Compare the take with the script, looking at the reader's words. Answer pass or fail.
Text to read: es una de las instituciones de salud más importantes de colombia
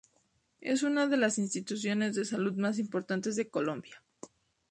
pass